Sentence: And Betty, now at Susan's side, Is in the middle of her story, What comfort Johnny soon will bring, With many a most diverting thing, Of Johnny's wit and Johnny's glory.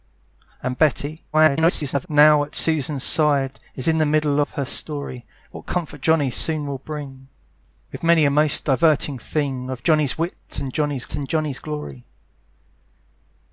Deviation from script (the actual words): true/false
true